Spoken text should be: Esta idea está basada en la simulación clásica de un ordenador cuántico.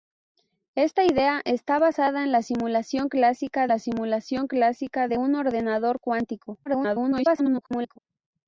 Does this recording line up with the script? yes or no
no